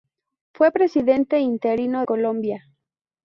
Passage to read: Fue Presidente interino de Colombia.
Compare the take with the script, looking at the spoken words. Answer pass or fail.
fail